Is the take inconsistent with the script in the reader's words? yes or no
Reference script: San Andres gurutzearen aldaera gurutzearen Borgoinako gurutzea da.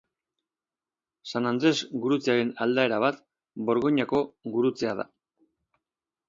yes